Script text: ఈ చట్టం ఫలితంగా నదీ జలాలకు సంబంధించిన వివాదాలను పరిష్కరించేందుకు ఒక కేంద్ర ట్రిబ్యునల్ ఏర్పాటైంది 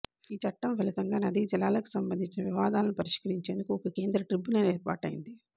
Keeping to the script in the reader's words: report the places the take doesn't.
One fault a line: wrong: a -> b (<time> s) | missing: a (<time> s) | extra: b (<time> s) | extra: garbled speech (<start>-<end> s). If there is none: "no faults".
no faults